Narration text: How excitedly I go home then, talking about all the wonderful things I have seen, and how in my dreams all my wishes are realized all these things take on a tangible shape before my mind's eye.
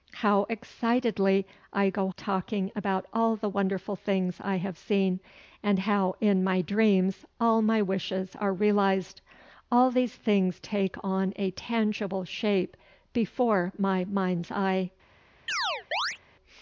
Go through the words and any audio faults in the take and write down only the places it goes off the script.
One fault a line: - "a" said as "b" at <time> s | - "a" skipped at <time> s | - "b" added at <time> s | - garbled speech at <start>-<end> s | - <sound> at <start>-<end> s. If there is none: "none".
- "home then" skipped at 2.1 s
- chirp at 15.5-16.2 s